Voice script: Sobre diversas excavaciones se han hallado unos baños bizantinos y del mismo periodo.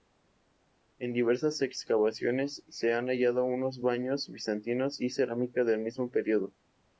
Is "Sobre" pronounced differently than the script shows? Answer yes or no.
yes